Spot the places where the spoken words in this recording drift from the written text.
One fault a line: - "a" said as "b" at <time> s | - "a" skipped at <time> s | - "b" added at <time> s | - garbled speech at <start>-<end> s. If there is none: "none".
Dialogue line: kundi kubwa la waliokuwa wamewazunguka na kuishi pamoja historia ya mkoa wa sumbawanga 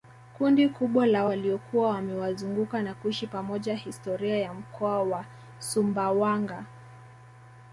none